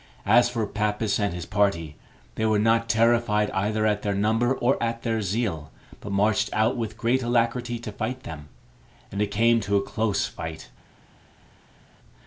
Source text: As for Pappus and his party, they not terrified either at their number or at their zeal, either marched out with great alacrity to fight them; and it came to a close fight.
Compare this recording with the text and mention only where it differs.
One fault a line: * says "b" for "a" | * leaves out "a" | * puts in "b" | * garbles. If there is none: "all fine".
* puts in "were"
* says "but" for "either"